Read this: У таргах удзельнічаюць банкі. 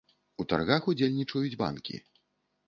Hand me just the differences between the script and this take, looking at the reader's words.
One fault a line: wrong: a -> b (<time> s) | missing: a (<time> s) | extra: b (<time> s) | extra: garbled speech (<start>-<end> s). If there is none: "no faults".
no faults